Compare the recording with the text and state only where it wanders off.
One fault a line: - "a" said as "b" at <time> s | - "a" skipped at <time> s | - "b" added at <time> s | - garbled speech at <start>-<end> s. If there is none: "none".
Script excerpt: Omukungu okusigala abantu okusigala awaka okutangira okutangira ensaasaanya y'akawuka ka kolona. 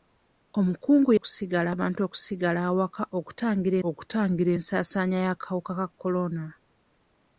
none